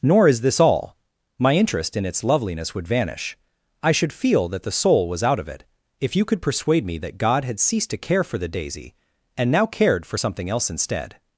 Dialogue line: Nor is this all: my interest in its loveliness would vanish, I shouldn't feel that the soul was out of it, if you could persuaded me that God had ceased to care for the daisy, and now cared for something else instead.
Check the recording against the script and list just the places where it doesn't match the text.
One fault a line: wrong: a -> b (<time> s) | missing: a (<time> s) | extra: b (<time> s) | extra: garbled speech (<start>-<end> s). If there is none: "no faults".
wrong: shouldn't -> should (3.9 s)
wrong: persuaded -> persuade (6.4 s)